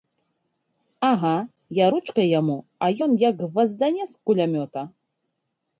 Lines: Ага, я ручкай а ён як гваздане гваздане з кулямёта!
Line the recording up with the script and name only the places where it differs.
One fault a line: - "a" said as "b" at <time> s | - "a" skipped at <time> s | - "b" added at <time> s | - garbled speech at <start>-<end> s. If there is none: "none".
- "яму" added at 2.4 s
- "гваздане" skipped at 4.0 s